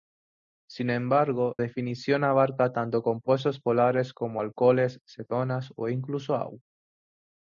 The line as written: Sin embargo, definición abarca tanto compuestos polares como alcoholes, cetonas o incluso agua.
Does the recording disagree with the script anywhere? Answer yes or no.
no